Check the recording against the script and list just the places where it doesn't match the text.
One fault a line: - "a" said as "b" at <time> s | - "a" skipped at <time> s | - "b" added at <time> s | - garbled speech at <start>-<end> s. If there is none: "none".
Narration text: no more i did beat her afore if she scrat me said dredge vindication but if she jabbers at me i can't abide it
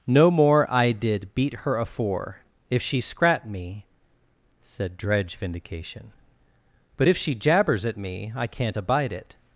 none